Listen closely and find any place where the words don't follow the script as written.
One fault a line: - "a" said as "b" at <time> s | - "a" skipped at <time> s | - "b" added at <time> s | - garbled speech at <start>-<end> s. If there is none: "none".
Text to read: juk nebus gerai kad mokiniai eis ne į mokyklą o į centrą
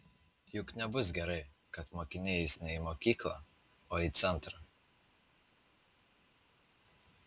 none